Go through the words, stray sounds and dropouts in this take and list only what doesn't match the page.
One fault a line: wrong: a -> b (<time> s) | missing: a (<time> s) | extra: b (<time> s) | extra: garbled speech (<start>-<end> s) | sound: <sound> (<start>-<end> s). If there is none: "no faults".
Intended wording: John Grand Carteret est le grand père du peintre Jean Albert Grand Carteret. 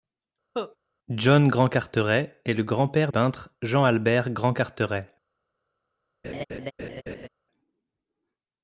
sound: cough (0.5-0.8 s)
missing: du (3.1 s)
sound: laugh (6.2-7.3 s)